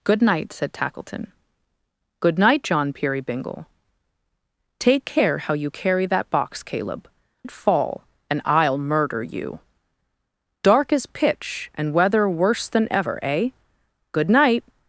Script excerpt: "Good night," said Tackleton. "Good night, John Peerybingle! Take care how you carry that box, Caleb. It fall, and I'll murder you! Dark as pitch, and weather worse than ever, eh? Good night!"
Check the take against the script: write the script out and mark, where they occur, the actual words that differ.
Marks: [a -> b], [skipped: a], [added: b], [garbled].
"Good night," said Tackleton. "Good night, John Peerybingle! Take care how you carry that box, Caleb. It fall, and I'll murder you! Dark as pitch, and weather worse than ever, eh? Good night!"